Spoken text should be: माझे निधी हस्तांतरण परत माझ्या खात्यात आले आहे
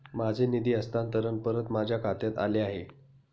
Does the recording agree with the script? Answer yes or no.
yes